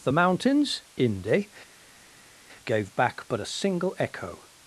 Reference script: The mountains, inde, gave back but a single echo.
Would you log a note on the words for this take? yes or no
no